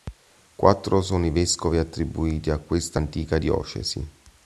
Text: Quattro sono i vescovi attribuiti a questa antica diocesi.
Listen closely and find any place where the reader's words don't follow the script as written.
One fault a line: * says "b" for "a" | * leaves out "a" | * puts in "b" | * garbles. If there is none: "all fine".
all fine